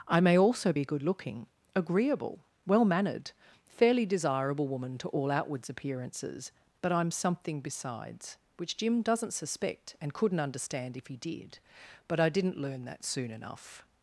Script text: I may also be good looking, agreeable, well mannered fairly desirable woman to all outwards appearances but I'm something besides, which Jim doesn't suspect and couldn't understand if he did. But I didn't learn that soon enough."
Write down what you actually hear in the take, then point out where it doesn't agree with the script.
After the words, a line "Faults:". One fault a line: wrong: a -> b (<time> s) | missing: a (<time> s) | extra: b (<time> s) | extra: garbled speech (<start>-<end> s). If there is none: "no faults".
I may also be good looking, agreeable, well mannered fairly desirable woman to all outwards appearances but I'm something besides, which Jim doesn't suspect and couldn't understand if he did. But I didn't learn that soon enough."
Faults:
no faults